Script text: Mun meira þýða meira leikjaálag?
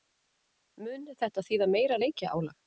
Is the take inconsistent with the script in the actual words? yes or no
yes